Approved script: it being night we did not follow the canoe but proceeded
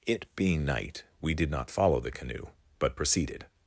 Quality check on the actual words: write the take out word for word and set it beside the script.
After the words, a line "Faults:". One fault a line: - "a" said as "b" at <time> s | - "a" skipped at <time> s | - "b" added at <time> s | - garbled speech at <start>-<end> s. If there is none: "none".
it being night we did not follow the canoe but proceeded
Faults:
none